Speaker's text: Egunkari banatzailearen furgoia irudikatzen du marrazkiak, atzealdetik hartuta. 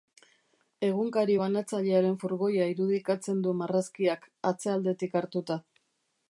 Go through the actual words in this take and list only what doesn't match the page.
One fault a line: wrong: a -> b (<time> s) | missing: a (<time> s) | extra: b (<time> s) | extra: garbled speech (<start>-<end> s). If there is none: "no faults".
no faults